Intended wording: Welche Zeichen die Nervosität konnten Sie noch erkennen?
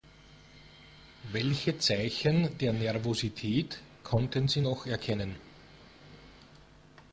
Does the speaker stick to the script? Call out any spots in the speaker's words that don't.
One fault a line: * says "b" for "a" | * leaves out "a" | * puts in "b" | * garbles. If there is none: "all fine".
* says "der" for "die"